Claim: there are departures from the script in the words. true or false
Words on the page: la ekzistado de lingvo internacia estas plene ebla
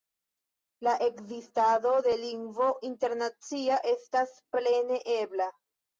false